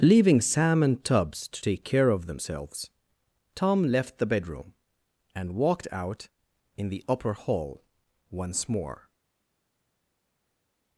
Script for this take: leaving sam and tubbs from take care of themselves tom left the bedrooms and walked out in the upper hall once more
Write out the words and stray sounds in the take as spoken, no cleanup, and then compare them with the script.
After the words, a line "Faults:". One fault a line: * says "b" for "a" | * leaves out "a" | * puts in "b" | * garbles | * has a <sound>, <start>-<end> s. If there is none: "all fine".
leaving sam and tubbs to take care of themselves tom left the bedroom and walked out in the upper hall once more
Faults:
* says "to" for "from"
* says "bedroom" for "bedrooms"